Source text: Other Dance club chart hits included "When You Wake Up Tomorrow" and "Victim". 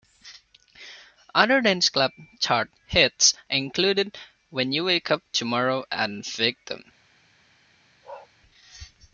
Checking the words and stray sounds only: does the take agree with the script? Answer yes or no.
no